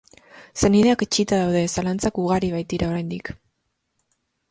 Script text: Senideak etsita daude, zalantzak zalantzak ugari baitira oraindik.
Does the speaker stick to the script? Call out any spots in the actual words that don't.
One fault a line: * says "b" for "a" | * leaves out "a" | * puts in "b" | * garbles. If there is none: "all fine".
* leaves out "zalantzak"